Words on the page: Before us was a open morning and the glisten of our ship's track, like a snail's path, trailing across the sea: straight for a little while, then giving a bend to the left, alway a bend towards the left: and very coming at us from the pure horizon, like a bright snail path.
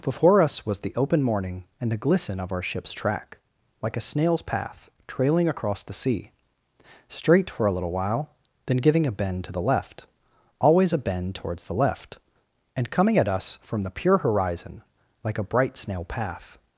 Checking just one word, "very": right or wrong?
wrong